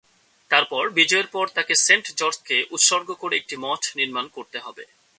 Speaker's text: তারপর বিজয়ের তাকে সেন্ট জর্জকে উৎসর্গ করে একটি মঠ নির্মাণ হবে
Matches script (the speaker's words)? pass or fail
fail